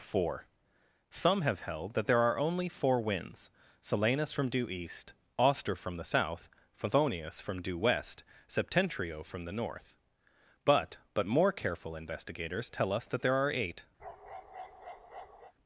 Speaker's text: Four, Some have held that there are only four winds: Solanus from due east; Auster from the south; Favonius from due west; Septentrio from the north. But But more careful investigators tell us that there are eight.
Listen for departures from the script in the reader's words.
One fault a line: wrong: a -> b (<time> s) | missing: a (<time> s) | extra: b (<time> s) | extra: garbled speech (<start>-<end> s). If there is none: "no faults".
no faults